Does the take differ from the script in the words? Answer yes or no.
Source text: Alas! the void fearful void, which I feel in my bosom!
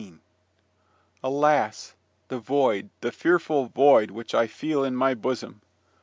yes